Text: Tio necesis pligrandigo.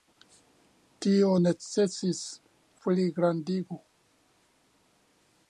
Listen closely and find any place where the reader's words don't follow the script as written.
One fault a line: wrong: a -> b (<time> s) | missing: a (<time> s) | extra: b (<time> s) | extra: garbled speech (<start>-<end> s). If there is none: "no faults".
no faults